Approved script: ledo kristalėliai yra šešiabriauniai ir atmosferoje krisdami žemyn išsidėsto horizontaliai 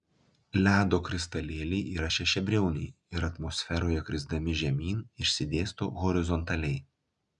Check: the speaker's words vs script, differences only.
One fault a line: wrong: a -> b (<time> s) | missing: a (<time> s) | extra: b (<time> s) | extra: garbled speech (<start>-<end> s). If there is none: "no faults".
no faults